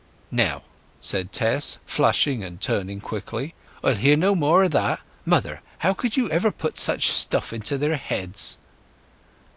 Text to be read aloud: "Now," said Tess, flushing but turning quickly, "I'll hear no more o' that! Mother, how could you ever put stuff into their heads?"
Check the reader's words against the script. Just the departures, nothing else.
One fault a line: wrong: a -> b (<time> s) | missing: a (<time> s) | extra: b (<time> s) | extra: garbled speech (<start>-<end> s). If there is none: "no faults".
wrong: but -> and (2.4 s)
extra: such (6.8 s)